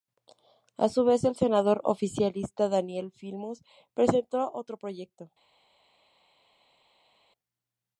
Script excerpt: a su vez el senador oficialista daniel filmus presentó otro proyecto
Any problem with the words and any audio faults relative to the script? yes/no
no